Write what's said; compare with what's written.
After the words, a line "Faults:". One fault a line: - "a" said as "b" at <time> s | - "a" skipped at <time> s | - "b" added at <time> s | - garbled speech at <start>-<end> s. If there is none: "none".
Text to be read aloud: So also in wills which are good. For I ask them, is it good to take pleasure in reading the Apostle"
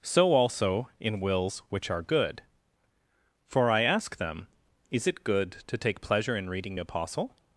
So also in wills which are good. For I ask them, is it good to take pleasure in reading Apostle"
Faults:
- "the" skipped at 6.8 s